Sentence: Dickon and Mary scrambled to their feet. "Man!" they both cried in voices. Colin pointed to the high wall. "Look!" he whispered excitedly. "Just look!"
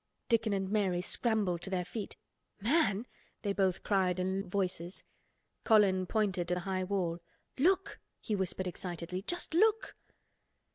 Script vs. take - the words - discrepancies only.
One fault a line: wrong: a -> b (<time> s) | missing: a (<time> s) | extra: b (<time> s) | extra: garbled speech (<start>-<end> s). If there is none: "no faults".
no faults